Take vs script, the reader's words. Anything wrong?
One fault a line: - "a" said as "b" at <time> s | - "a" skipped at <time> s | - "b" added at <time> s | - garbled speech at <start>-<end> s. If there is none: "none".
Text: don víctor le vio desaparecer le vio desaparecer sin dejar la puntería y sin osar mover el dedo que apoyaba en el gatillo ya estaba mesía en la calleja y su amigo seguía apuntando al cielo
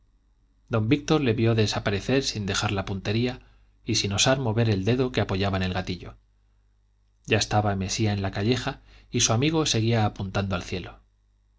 - "le vio desaparecer" skipped at 2.2 s